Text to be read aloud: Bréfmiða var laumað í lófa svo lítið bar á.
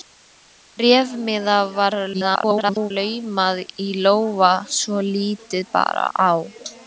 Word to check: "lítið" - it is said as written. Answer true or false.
true